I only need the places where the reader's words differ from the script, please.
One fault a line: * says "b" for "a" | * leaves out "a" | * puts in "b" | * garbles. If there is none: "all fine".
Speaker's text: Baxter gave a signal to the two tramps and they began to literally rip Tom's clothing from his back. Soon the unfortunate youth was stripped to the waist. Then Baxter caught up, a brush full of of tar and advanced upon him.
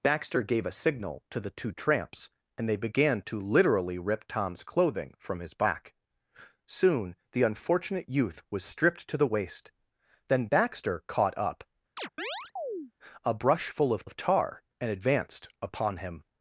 all fine